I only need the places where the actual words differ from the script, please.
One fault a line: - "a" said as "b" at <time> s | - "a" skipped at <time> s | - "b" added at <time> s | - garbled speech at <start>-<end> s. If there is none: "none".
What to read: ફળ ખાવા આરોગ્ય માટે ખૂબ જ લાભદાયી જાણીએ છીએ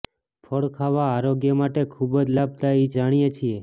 none